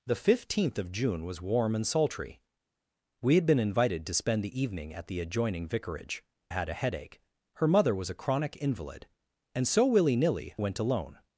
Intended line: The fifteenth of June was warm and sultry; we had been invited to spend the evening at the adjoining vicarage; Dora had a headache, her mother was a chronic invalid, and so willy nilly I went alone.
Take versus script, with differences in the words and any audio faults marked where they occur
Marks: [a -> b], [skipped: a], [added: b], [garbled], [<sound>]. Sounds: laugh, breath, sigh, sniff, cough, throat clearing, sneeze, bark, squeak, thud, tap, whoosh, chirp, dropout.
The fifteenth of June was warm and sultry; we had been invited to spend the evening at the adjoining vicarage; [skipped: Dora] had a headache, her mother was a chronic invalid, and so willy nilly [skipped: I] went alone.